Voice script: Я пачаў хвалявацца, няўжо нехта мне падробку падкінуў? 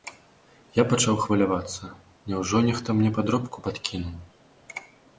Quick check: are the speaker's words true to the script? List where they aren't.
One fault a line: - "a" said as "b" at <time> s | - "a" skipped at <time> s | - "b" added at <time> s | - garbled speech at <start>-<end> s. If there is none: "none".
none